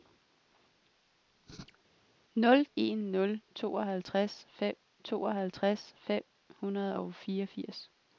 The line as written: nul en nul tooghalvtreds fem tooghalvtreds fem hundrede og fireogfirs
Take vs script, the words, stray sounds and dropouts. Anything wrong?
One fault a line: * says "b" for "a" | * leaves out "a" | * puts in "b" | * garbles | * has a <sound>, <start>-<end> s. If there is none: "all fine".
all fine